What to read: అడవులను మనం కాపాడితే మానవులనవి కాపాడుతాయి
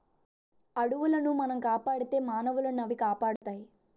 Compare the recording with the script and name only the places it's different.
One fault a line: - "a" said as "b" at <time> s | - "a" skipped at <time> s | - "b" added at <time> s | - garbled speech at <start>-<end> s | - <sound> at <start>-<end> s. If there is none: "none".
- dropout at 3.4-3.4 s